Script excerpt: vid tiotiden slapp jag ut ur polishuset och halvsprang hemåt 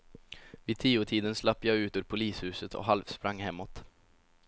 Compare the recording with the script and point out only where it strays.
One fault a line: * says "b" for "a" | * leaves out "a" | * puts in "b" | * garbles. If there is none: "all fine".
all fine